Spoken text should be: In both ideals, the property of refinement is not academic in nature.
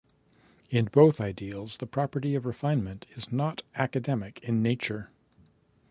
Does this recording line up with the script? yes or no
yes